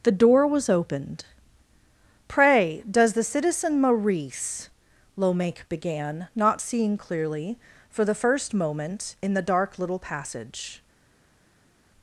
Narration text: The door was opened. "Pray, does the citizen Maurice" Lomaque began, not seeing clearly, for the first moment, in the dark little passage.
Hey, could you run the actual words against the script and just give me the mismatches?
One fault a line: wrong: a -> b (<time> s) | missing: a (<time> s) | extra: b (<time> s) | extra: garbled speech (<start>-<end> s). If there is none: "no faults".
no faults